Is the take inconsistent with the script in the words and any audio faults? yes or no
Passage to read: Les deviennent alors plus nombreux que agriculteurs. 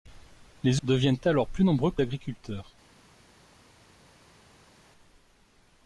no